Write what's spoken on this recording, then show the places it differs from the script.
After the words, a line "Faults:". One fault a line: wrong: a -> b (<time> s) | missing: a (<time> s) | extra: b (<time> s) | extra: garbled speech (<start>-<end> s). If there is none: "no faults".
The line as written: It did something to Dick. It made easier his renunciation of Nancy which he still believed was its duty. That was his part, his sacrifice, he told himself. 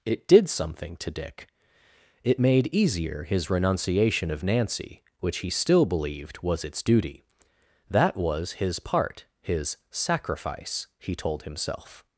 It did something to Dick. It made easier his renunciation of Nancy which he still believed was its duty. That was his part, his sacrifice, he told himself.
Faults:
no faults